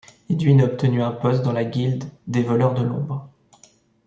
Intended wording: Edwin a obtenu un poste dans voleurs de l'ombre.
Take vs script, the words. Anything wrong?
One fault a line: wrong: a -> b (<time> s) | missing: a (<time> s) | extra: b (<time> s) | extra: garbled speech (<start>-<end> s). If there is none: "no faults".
extra: la guilde des (1.5 s)